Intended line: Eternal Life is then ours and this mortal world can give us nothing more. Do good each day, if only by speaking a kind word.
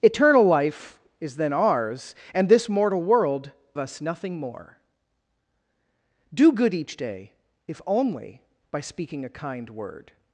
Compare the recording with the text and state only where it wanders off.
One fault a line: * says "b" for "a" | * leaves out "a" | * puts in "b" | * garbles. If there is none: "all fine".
* leaves out "can give"